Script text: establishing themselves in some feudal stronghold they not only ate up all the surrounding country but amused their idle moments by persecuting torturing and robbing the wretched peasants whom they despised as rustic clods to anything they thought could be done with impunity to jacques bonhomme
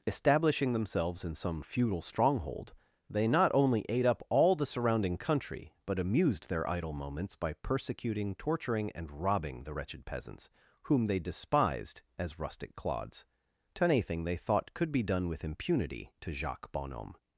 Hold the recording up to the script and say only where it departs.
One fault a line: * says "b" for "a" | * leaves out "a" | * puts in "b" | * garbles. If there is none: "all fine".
all fine